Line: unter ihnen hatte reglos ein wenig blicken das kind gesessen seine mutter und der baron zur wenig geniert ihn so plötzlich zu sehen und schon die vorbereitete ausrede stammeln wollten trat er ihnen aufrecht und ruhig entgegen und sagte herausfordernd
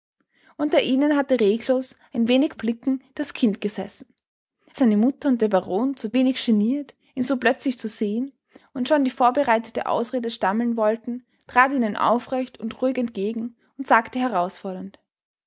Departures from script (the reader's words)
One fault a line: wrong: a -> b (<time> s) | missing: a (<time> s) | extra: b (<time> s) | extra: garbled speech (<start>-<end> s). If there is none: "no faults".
no faults